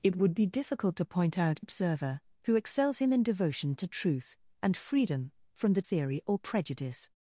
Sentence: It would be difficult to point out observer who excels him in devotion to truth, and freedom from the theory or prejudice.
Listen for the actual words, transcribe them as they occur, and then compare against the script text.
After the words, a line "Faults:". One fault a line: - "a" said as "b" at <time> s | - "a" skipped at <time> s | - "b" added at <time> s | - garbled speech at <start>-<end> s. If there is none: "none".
It would be difficult to point out observer who excels him in devotion to truth, and freedom from the theory or prejudice.
Faults:
none